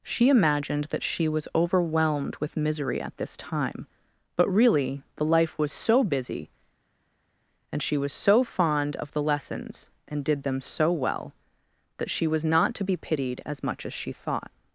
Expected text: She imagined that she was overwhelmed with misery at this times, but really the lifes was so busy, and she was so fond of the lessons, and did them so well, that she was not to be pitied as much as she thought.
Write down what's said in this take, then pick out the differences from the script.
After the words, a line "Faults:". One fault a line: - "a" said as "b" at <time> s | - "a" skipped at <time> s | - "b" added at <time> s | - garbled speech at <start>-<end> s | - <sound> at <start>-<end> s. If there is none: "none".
She imagined that she was overwhelmed with misery at this time, but really the life was so busy, and she was so fond of the lessons, and did them so well, that she was not to be pitied as much as she thought.
Faults:
- "times" said as "time" at 3.4 s
- "lifes" said as "life" at 5.2 s